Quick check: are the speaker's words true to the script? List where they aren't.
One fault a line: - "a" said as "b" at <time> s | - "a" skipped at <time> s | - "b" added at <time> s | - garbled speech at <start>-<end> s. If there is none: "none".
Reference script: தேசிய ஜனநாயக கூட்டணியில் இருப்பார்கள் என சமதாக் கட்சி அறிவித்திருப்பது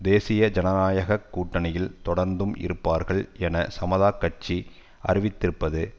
- "தொடர்ந்தும்" added at 2.0 s